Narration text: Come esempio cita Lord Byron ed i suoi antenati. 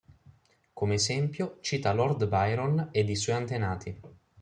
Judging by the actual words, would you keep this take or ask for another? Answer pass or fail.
pass